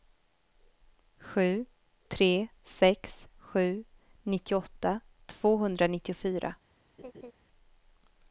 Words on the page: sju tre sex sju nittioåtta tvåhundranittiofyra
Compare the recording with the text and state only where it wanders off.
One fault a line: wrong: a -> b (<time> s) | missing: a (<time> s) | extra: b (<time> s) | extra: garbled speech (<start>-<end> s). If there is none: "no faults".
no faults